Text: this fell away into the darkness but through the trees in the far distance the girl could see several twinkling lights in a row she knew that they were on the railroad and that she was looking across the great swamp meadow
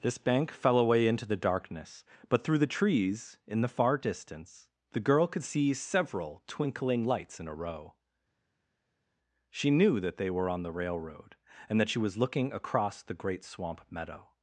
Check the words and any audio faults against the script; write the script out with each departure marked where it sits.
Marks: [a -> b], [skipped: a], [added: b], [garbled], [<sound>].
this [added: bank] fell away into the darkness but through the trees in the far distance the girl could see several twinkling lights in a row she knew that they were on the railroad and that she was looking across the great swamp meadow